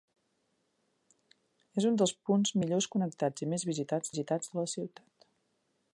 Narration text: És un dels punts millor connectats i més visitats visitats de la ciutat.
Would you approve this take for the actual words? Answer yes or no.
yes